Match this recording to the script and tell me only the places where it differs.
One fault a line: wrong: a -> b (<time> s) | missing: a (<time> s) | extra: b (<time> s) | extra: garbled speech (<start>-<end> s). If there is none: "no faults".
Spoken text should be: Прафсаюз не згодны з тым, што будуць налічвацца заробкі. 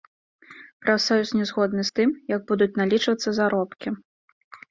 wrong: што -> як (2.3 s)